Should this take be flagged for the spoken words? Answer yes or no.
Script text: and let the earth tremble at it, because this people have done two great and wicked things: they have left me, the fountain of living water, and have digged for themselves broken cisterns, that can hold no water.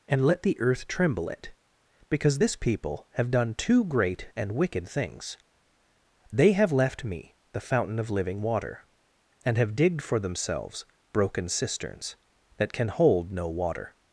yes